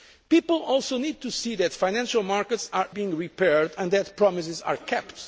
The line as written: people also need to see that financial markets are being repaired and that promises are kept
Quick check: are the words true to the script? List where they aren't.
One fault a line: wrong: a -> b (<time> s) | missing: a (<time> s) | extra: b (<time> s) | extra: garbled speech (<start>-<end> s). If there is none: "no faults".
no faults